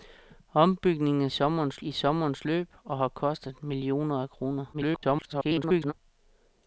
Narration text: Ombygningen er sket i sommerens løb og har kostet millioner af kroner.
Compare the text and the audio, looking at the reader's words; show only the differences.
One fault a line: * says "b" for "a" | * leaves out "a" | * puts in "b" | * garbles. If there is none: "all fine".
* says "sommerens" for "sket"
* garbles